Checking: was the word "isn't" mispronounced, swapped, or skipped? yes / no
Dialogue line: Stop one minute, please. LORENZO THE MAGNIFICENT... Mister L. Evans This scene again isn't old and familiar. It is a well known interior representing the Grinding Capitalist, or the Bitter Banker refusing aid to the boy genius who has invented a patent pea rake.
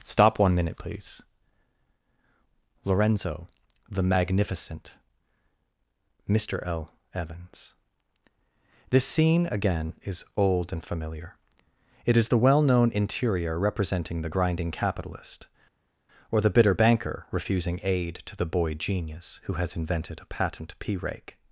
yes